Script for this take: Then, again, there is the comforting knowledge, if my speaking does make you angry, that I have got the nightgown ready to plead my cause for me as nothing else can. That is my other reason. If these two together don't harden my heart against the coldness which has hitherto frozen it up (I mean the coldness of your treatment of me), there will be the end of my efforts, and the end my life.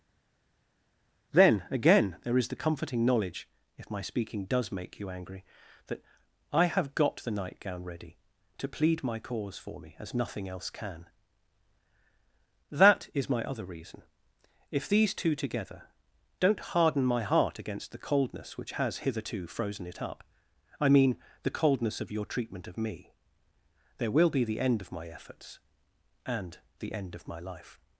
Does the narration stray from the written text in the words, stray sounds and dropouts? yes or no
yes